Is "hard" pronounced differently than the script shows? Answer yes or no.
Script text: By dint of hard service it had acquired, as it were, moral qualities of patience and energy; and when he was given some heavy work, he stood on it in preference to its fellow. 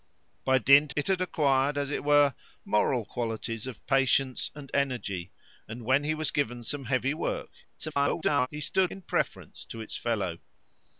yes